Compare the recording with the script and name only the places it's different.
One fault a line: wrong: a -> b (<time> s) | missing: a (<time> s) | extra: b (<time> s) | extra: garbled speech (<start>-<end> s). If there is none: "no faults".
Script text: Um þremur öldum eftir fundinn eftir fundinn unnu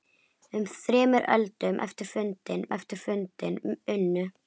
no faults